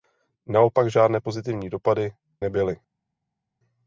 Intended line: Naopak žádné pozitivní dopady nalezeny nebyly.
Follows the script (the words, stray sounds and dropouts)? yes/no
no